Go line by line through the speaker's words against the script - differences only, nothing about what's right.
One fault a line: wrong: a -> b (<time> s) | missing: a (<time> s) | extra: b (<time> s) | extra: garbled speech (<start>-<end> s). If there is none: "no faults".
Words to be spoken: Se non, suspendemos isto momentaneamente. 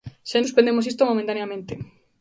missing: non (0.4 s)